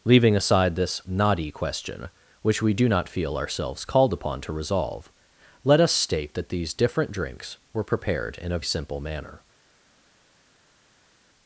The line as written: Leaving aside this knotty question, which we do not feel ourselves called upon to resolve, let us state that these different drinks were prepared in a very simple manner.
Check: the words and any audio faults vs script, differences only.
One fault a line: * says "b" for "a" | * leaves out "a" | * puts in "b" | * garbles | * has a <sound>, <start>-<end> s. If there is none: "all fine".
* leaves out "very"